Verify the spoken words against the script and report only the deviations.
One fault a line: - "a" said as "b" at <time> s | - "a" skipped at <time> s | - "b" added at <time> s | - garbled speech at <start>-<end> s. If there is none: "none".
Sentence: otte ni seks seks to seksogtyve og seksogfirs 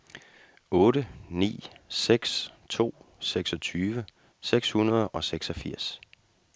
- "seks" skipped at 2.5 s
- "seks hundrede" added at 4.4 s